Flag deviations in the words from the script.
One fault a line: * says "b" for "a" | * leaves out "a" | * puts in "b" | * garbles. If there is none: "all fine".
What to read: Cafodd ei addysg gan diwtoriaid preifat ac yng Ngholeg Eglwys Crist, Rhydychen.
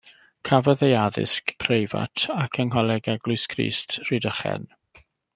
* leaves out "gan diwtoriaid"